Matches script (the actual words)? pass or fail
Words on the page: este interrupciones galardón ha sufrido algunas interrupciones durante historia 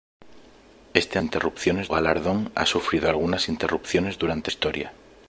pass